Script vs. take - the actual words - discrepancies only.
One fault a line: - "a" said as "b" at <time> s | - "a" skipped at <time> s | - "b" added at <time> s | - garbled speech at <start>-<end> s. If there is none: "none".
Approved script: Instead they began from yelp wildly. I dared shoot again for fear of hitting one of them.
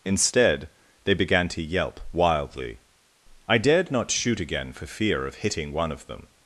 - "from" said as "to" at 1.5 s
- "not" added at 3.9 s